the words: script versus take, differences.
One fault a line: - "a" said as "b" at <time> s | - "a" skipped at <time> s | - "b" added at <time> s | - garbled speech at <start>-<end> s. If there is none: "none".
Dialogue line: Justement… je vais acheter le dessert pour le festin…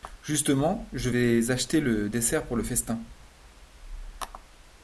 none